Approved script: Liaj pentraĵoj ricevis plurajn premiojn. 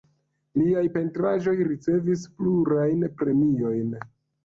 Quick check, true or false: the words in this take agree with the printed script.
true